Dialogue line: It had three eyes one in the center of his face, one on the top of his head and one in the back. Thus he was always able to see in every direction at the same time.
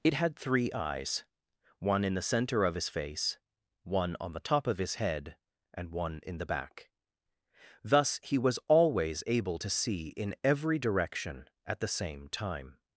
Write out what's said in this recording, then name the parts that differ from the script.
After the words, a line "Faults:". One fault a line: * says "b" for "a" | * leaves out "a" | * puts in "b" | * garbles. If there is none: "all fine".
It had three eyes one in the center of his face, one on the top of his head and one in the back. Thus he was always able to see in every direction at the same time.
Faults:
all fine